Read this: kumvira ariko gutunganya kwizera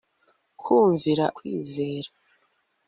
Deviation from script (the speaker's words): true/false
true